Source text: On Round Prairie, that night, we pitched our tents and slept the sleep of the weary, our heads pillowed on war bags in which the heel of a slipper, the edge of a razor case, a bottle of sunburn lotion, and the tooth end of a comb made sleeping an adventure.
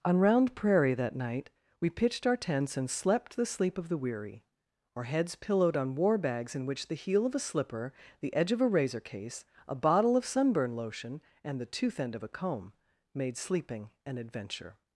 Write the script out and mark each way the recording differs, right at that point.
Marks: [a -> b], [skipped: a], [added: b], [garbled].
On Round Prairie, that night, we pitched our tents and slept the sleep of the weary, our heads pillowed on war bags in which the heel of a slipper, the edge of a razor case, a bottle of sunburn lotion, and the tooth end of a comb made sleeping an adventure.